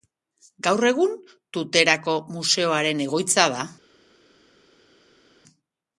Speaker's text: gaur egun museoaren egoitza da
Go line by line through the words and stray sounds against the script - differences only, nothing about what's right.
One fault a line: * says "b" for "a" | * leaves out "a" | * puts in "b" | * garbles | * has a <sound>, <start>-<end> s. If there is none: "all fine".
* puts in "tuterako"